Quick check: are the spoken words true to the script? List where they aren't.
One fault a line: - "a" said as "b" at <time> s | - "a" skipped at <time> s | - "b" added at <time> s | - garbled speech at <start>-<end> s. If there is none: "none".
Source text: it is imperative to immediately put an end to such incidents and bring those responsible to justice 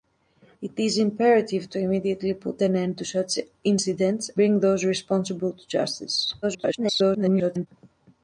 - "and" skipped at 4.3 s
- garbled speech at 6.4-7.7 s